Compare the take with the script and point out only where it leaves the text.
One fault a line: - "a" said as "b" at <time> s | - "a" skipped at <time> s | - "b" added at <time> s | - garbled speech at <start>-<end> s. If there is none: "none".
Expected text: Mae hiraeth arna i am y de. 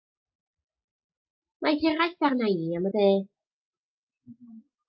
none